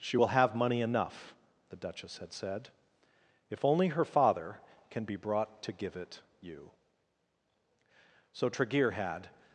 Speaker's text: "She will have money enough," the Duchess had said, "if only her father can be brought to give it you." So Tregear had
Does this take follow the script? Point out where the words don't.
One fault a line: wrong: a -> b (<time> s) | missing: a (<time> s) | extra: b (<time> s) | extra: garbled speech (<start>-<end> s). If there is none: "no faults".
no faults